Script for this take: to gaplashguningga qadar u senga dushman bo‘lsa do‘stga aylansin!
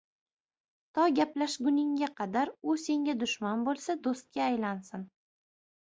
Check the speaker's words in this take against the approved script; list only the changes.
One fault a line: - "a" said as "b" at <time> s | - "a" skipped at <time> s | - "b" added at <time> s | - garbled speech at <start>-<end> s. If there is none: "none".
none